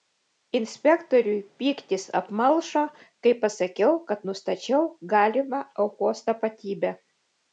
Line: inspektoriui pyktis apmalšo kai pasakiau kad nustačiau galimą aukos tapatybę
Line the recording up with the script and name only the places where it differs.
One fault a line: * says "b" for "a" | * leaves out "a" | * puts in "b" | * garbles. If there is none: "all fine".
all fine